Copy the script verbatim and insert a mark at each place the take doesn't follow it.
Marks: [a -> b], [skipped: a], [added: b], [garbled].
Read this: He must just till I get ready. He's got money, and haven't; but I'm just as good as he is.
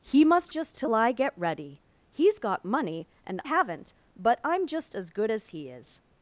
He must just till I get ready. He's got money, and haven't; but I'm just as good as he is.